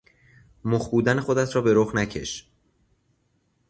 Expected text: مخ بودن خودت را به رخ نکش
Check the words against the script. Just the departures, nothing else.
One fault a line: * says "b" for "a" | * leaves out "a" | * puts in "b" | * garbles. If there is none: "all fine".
all fine